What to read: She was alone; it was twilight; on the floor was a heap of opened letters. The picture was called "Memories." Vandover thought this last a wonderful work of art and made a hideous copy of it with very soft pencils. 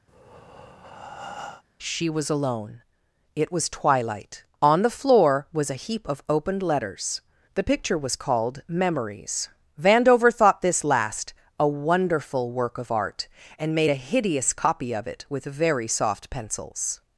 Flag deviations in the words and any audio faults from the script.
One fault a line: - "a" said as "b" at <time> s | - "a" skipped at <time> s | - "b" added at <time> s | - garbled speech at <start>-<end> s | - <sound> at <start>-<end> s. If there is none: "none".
- breath at 0.1-1.6 s